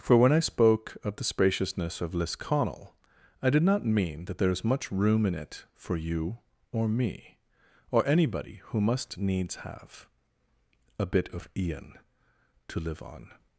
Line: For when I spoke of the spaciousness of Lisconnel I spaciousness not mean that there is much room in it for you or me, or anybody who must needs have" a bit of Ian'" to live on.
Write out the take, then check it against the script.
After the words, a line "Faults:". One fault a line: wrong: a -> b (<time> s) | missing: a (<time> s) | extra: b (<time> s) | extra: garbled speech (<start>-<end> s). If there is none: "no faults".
For when I spoke of the spaciousness of Lisconnel I did not mean that there is much room in it for you or me, or anybody who must needs have" a bit of Ian'" to live on.
Faults:
wrong: spaciousness -> did (3.5 s)